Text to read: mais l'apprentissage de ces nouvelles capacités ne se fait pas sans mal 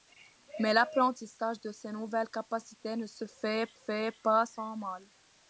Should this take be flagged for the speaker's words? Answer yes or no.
yes